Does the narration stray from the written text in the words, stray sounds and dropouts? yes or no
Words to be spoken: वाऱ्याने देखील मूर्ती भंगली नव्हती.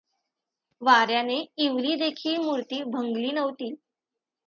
yes